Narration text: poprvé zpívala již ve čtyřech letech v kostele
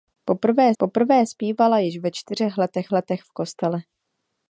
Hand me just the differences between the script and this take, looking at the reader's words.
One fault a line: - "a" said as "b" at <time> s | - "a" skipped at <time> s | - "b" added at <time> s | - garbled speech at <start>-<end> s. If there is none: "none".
- "poprvé" added at 0.8 s
- "letech" added at 2.9 s